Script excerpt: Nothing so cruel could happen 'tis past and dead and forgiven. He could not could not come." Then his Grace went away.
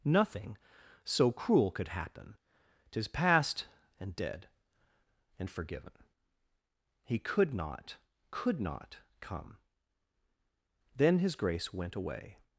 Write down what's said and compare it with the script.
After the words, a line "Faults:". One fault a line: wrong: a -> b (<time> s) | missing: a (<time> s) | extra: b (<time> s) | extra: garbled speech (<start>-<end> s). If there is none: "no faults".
Nothing so cruel could happen 'tis past and dead and forgiven. He could not could not come." Then his Grace went away.
Faults:
no faults